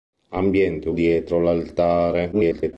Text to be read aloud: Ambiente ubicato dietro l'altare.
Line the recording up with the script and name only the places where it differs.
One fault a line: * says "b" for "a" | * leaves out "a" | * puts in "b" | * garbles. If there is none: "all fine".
* leaves out "ubicato"
* garbles